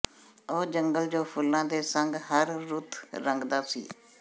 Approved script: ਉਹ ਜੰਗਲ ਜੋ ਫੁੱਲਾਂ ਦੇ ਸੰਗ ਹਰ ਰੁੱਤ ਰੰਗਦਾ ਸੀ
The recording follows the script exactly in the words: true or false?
true